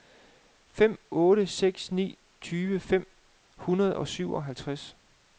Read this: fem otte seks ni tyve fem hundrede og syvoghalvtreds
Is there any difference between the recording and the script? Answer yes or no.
no